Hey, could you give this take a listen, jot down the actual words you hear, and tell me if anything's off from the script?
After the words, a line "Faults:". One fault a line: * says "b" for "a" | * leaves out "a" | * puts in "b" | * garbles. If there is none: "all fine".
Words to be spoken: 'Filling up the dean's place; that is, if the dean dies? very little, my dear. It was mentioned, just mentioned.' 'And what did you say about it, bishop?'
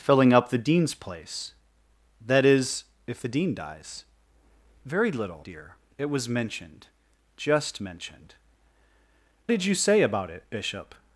'Filling up the dean's place; that is, if the dean dies? very little, dear. It was mentioned, just mentioned.' 'Did you say about it, bishop?'
Faults:
* leaves out "my"
* leaves out "And what"